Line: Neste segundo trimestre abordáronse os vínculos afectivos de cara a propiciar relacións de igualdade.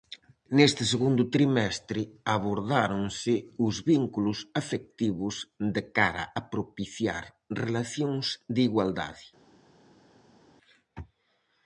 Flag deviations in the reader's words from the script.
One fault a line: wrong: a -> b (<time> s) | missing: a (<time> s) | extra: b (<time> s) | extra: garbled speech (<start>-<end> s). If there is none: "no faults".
no faults